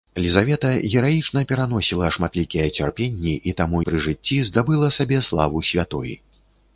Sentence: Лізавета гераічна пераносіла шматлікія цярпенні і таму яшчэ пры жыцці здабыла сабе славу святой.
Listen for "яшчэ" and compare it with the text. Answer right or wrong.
wrong